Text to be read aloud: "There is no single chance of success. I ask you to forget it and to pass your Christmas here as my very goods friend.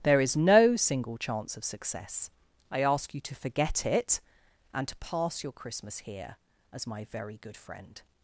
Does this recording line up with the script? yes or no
no